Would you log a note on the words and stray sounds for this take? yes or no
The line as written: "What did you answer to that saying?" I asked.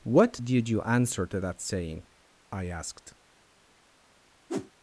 yes